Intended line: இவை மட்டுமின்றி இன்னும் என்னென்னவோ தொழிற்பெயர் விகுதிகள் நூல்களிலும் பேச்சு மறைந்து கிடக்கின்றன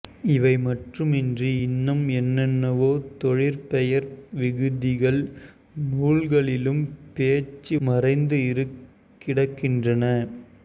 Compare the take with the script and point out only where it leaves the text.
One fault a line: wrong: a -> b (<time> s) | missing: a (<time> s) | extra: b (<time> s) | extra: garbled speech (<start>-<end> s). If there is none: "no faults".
no faults